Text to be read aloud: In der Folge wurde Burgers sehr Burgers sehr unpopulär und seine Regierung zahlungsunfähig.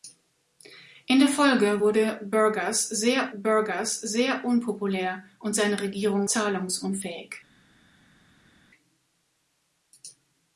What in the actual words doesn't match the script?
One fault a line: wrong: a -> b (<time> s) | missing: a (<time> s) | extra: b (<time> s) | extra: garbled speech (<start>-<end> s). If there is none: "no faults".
no faults